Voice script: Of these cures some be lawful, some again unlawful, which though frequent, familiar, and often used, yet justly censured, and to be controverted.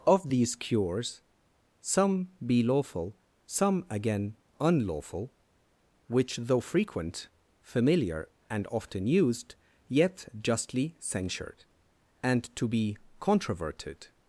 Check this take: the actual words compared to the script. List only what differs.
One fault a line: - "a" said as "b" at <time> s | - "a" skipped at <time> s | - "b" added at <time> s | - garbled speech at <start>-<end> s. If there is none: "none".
none